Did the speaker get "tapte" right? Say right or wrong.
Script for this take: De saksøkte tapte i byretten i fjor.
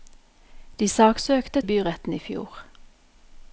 wrong